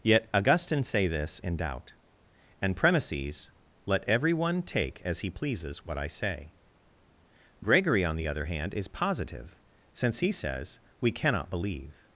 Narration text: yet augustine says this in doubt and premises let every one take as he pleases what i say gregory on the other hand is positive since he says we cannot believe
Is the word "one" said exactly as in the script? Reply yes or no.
yes